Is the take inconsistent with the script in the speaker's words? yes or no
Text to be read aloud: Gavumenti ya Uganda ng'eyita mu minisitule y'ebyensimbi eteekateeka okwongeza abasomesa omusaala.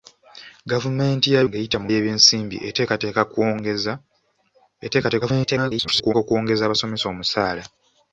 yes